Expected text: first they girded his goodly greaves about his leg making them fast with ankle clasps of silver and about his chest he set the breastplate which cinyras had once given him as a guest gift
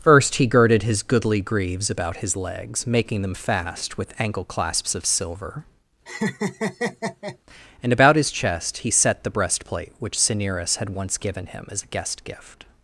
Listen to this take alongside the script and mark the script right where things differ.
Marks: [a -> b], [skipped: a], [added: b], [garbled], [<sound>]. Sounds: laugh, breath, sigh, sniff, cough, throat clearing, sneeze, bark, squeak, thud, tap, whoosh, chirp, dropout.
first [they -> he] girded his goodly greaves about his [leg -> legs] making them fast with ankle clasps of silver [laugh] and about his chest he set the breastplate which cinyras had once given him as a guest gift